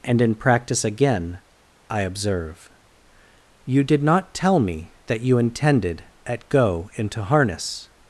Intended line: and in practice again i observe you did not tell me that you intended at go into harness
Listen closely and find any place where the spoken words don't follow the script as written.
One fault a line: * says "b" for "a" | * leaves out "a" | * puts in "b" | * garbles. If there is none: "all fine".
all fine